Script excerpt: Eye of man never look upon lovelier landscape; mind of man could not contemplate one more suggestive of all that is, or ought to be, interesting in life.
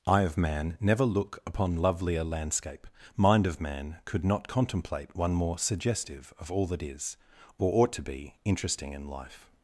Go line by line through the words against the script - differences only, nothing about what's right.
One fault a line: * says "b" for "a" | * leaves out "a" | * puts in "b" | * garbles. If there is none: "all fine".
all fine